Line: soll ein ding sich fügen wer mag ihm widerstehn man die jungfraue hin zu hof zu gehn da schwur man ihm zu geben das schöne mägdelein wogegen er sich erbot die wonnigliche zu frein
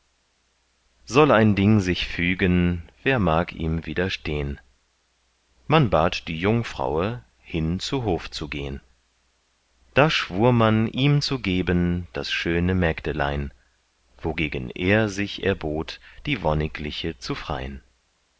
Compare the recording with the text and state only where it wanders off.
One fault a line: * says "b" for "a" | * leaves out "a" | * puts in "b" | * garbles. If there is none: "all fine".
* puts in "bat"